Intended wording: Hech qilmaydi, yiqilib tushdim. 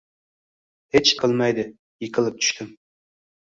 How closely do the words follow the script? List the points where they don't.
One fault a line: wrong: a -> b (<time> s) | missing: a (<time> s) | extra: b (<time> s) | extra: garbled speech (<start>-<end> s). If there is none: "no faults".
no faults